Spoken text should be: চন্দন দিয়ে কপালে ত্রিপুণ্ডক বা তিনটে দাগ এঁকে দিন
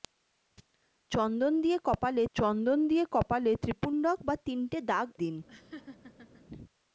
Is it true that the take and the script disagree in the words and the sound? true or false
true